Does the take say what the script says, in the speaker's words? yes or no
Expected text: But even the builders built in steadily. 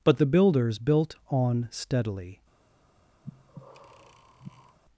no